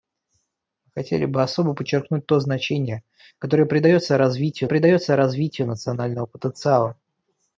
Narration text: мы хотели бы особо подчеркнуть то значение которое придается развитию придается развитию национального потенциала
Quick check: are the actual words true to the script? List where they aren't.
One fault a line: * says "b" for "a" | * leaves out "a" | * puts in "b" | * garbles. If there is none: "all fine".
all fine